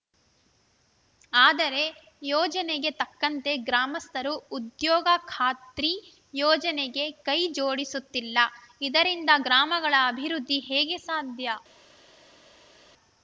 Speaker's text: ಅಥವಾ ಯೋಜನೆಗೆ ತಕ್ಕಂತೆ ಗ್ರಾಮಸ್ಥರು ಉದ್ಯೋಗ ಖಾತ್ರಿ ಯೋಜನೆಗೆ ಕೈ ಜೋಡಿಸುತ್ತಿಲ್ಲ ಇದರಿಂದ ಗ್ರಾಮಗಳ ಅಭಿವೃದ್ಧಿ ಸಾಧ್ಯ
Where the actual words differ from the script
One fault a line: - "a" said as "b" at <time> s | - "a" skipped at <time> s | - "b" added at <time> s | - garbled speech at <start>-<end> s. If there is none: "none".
- "ಅಥವಾ" said as "ಆದರೆ" at 1.3 s
- "ಹೇಗೆ" added at 10.7 s